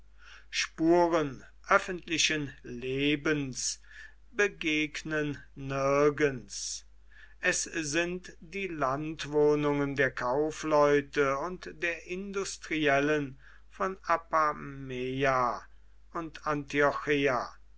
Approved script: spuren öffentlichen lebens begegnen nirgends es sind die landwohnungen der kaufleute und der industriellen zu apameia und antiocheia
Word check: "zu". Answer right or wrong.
wrong